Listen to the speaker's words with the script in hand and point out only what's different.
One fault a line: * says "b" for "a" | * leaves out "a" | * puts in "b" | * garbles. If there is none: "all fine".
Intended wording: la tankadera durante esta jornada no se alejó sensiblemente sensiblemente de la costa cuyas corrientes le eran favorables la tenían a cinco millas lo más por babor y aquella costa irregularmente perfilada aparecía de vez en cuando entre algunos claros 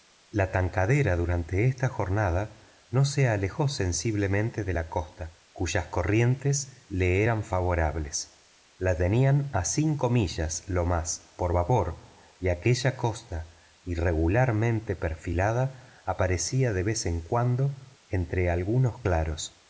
* leaves out "sensiblemente"